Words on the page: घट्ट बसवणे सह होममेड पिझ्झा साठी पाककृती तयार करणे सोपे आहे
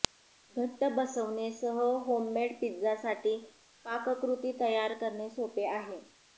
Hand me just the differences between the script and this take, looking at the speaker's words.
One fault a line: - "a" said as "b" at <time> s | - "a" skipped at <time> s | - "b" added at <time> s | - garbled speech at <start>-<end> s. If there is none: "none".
none